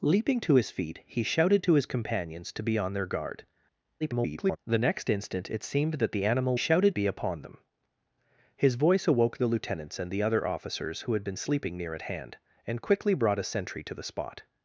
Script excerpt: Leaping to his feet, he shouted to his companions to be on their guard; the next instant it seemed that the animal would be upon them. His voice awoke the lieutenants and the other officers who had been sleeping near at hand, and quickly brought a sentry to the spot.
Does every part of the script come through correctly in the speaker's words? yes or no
no